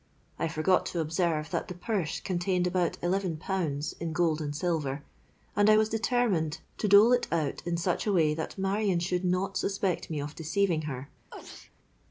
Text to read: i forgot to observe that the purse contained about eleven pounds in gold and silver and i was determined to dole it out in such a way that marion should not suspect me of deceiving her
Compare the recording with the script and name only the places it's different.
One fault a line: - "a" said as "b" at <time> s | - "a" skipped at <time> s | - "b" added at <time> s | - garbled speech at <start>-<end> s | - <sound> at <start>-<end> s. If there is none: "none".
- sneeze at 11.3-11.7 s